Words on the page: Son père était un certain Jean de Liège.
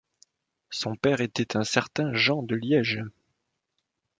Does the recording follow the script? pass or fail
pass